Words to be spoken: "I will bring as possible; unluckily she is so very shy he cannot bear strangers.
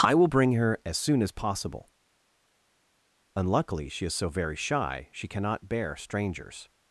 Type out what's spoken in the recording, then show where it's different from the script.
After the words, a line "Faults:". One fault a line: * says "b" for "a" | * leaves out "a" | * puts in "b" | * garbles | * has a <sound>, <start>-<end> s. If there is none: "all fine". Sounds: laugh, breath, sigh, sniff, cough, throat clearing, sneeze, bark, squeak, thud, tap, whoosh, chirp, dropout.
"I will bring her as soon as possible; unluckily she is so very shy she cannot bear strangers.
Faults:
* puts in "her"
* puts in "soon as"
* says "she" for "he"